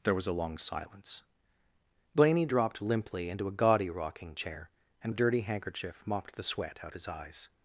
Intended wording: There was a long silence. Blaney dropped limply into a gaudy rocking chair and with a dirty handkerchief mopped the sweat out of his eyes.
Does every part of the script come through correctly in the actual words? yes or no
no